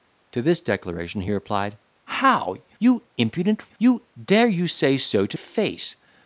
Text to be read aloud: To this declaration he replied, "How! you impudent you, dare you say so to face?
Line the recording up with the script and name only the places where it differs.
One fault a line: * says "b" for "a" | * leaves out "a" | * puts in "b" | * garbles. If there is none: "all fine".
all fine